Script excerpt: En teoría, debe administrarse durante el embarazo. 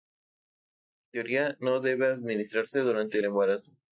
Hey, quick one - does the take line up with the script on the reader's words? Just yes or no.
no